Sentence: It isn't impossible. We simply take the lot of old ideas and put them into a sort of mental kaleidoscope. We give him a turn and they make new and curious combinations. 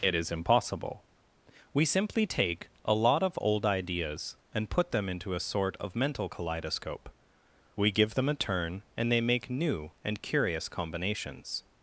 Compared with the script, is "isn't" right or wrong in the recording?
wrong